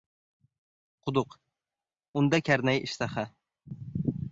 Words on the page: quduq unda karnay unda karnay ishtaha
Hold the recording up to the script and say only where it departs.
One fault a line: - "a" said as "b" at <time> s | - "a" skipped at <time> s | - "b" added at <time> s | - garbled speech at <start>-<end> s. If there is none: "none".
- "unda karnay" skipped at 2.8 s